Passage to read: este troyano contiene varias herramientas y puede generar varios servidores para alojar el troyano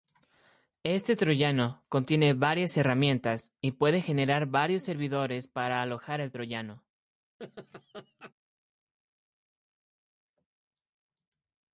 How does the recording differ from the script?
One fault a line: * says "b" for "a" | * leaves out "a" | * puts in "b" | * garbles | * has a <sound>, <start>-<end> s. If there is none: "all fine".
* has a laugh, 7.4-8.3 s